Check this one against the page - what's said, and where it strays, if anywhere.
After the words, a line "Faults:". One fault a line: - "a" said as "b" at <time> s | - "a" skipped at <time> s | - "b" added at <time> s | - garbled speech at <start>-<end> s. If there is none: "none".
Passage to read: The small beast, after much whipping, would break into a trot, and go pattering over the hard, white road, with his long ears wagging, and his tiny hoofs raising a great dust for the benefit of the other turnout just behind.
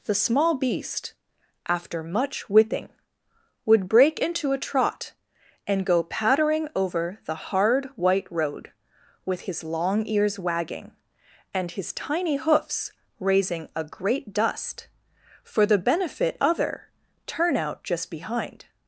The small beast, after much whipping, would break into a trot, and go pattering over the hard, white road, with his long ears wagging, and his tiny hoofs raising a great dust for the benefit other turnout just behind.
Faults:
- "of the" skipped at 16.4 s